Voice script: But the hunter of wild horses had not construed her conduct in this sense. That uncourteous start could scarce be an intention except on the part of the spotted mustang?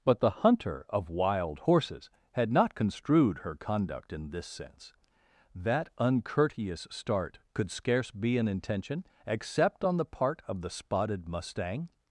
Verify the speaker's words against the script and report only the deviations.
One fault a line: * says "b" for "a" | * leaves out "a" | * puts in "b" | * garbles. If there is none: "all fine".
all fine